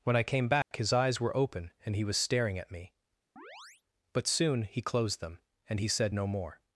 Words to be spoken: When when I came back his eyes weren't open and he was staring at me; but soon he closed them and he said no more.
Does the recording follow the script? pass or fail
fail